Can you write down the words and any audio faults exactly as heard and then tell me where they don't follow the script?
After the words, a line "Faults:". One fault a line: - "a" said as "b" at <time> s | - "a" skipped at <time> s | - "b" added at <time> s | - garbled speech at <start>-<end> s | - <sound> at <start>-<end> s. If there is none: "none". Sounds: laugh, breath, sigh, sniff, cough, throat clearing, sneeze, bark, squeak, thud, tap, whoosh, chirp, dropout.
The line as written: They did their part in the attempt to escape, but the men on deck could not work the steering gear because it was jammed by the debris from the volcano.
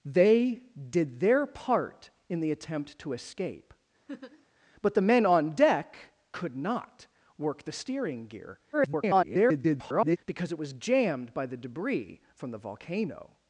They did their part in the attempt to escape, but the men on deck could not work the steering gear [garbled] because it was jammed by the debris from the volcano.
Faults:
- laugh at 4.1-4.5 s
- garbled speech at 8.7-10.2 s